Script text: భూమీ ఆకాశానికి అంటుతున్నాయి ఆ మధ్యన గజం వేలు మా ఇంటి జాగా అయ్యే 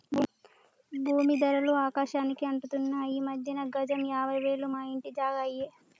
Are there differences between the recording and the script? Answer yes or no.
yes